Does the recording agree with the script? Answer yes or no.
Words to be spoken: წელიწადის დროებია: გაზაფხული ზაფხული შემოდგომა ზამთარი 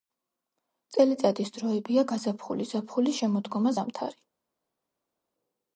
yes